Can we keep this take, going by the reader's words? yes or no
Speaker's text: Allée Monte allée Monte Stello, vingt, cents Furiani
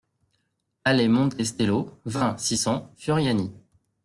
no